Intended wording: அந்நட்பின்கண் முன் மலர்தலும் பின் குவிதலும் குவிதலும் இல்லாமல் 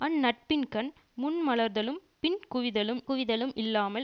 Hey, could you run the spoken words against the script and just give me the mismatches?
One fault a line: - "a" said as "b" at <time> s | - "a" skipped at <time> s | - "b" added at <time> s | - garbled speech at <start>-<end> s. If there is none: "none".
none